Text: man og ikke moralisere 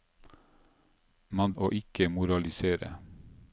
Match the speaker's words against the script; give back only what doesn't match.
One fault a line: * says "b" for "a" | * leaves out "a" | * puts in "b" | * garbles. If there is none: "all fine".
all fine